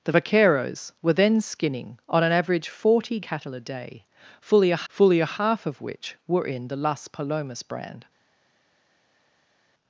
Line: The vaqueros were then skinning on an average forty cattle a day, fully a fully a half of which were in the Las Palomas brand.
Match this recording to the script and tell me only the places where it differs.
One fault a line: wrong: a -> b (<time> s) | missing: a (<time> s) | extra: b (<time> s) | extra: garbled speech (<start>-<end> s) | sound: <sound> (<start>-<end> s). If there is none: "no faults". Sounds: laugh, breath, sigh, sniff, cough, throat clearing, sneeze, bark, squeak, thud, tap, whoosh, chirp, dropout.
no faults